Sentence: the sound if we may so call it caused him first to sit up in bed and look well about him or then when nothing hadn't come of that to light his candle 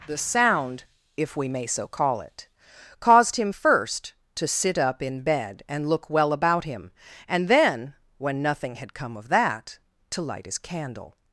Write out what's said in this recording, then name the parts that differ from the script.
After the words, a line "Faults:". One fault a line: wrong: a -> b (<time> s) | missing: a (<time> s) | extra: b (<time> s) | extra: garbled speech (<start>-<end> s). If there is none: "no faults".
the sound if we may so call it caused him first to sit up in bed and look well about him and then when nothing had come of that to light his candle
Faults:
wrong: or -> and (7.3 s)
wrong: hadn't -> had (8.7 s)